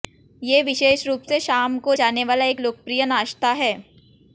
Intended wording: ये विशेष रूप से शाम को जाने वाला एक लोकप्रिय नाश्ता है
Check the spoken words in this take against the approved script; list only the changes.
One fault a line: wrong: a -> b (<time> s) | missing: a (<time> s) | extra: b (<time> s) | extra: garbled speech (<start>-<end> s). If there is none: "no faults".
no faults